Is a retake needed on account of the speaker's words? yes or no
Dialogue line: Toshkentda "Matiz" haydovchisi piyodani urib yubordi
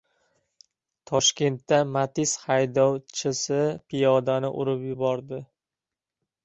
no